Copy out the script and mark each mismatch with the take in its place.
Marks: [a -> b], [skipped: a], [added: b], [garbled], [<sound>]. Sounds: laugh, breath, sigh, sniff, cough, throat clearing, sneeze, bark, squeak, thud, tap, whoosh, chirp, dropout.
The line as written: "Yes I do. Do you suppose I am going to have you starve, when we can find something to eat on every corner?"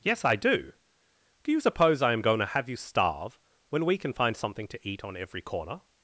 "Yes I do. Do you suppose I am going to have you starve, when we can find something to eat on every corner?"